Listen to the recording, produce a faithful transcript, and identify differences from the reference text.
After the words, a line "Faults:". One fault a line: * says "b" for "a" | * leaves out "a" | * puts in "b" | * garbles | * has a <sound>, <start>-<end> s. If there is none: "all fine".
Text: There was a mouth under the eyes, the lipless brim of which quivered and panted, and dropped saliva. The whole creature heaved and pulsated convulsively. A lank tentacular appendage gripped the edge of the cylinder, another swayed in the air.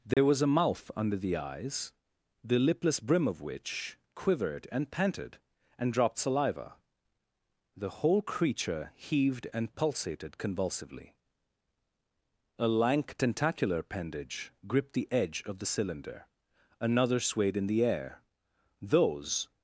There was a mouth under the eyes, the lipless brim of which quivered and panted, and dropped saliva. The whole creature heaved and pulsated convulsively. A lank tentacular appendage gripped the edge of the cylinder, another swayed in the air. Those
Faults:
* has a dropout, 0.1-0.2 s
* puts in "Those"